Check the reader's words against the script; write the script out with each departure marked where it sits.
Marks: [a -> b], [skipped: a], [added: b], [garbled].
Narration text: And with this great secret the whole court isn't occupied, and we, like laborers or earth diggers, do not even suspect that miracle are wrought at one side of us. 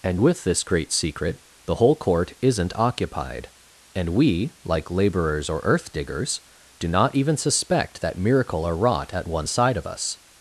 And with this great secret the whole court isn't occupied, and we, like laborers or earth diggers, do not even suspect that miracle are wrought at one side of us.